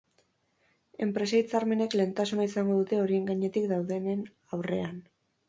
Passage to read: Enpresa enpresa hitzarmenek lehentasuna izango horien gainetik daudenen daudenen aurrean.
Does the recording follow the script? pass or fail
fail